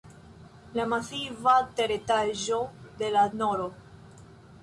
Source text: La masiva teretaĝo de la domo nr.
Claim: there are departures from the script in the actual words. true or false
true